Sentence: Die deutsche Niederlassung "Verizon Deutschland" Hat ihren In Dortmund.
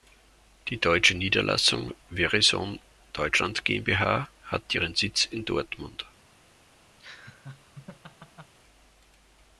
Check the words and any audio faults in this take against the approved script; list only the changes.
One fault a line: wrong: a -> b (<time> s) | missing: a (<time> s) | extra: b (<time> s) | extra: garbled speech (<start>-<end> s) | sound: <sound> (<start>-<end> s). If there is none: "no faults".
extra: GmbH (3.6 s)
extra: Sitz (4.9 s)
sound: laugh (7.0-8.5 s)